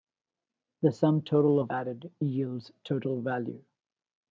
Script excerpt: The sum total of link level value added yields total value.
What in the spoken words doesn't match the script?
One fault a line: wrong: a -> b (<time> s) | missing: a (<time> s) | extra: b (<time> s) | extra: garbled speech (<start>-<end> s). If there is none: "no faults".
missing: link level value (1.7 s)